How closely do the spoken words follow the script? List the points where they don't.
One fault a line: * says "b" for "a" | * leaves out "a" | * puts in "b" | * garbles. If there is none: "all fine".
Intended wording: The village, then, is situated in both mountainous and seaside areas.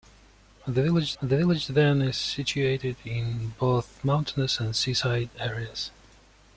* puts in "the village"